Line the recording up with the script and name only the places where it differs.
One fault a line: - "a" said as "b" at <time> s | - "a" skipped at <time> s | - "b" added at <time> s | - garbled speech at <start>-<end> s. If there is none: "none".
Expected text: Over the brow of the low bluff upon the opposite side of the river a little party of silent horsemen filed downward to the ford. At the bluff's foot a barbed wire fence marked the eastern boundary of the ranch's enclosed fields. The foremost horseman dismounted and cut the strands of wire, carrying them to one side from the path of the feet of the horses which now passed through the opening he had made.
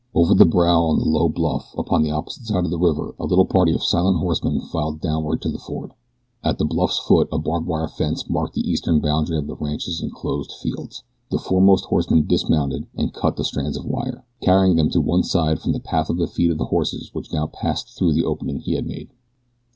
none